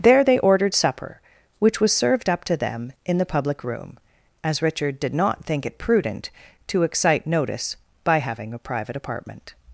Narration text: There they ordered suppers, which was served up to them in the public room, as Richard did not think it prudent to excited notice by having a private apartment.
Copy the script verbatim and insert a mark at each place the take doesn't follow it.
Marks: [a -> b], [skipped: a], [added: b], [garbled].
There they ordered [suppers, -> supper] which was served up to them in the public room, as Richard did not think it prudent to [excited -> excite] notice by having a private apartment.